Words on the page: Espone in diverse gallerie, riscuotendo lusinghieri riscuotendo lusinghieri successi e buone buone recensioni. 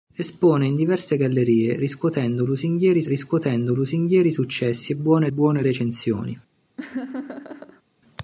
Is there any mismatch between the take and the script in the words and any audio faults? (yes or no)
yes